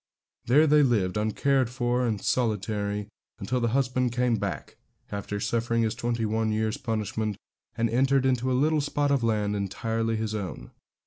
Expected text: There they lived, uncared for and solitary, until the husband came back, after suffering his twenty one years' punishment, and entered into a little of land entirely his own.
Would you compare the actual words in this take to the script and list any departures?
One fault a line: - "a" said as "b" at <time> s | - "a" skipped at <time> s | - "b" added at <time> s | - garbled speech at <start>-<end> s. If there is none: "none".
- "spot" added at 8.8 s